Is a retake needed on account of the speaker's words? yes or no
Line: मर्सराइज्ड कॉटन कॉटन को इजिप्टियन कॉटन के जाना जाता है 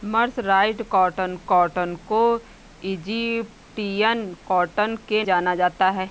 no